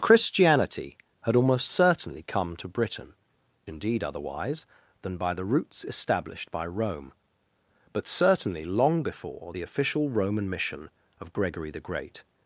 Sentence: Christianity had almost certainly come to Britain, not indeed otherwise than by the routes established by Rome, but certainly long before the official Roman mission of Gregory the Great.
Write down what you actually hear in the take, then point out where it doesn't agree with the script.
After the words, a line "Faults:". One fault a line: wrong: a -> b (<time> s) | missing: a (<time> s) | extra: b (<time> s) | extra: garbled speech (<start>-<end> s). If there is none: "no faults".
Christianity had almost certainly come to Britain, indeed otherwise than by the routes established by Rome, but certainly long before the official Roman mission of Gregory the Great.
Faults:
missing: not (3.1 s)